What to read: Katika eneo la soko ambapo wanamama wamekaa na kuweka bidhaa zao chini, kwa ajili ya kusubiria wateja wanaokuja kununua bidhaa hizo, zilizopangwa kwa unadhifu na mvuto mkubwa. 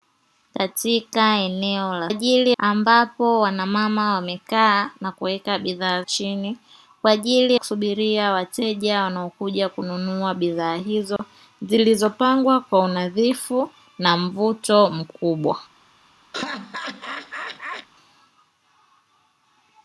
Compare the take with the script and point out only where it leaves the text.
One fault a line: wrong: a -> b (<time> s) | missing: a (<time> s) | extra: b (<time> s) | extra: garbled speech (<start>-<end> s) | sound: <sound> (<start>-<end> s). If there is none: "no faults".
wrong: soko -> ajili (2.1 s)
missing: zao (6.0 s)
missing: ya (7.6 s)
sound: dropout (11.2-11.2 s)
sound: laugh (16.3-17.9 s)